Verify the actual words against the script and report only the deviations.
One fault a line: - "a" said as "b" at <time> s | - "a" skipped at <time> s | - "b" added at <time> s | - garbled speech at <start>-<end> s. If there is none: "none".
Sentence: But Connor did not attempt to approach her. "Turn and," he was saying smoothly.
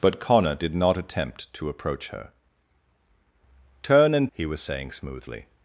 none